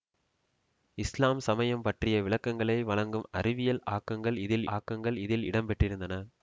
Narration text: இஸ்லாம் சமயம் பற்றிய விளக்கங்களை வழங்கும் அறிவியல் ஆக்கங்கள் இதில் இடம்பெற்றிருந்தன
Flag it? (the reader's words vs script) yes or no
yes